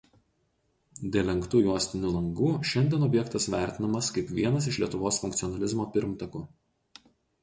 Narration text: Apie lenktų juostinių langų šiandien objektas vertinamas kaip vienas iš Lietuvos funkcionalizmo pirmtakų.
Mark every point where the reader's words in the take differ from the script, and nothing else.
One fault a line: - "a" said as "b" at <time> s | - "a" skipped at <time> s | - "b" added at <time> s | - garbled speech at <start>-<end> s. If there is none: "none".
- "Apie" said as "Dėl" at 1.1 s